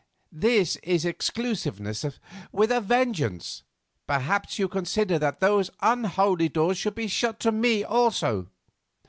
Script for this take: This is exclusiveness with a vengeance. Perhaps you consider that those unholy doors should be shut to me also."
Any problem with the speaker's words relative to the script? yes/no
no